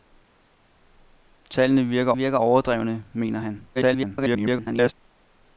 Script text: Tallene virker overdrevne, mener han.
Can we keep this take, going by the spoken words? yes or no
no